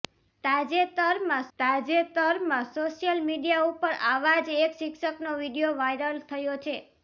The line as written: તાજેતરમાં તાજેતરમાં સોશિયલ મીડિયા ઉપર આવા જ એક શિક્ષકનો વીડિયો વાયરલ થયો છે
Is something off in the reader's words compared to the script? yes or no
no